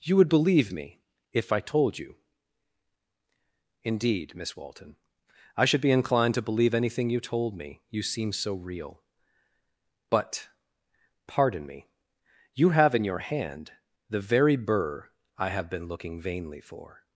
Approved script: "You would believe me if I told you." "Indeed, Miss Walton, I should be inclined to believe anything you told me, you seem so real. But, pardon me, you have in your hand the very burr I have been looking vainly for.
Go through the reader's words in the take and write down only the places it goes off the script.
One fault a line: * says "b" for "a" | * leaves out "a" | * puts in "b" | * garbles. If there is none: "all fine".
all fine